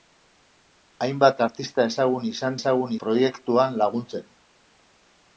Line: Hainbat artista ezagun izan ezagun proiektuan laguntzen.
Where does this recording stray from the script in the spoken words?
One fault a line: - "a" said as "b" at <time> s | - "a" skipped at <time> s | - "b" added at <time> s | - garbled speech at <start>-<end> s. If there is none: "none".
none